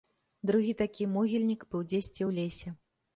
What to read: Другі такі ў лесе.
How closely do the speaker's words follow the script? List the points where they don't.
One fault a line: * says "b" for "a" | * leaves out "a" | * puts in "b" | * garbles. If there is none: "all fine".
* puts in "могільнік быў дзесьці"